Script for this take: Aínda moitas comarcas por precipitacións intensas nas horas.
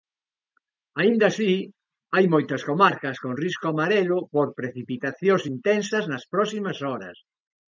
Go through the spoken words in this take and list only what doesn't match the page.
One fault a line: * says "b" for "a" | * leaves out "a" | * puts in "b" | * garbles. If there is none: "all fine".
* puts in "así hai"
* puts in "con risco amarelo"
* puts in "próximas"